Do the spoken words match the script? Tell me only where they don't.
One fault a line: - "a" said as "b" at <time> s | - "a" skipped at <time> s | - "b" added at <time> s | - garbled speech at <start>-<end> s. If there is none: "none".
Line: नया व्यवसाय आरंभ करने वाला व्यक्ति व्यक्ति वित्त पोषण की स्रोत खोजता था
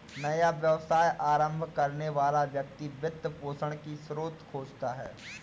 - "व्यक्ति" skipped at 2.9 s
- "था" said as "है" at 4.9 s